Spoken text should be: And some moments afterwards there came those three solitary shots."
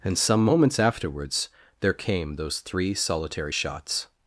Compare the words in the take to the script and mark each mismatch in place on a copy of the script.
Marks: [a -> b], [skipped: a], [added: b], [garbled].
And some moments afterwards there came those three solitary shots."